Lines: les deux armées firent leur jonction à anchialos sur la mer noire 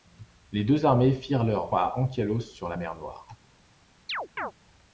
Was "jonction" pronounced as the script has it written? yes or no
no